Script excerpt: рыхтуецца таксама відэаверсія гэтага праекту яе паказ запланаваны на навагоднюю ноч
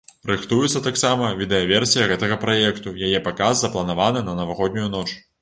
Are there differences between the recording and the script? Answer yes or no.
no